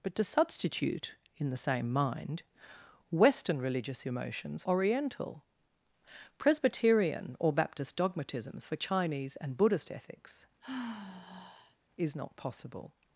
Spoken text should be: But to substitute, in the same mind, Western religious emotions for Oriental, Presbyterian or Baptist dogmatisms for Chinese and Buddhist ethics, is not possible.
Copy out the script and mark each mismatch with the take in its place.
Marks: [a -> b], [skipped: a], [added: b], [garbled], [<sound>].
But to substitute, in the same mind, Western religious emotions [skipped: for] Oriental, Presbyterian or Baptist dogmatisms for Chinese and Buddhist ethics, [sigh] is not possible.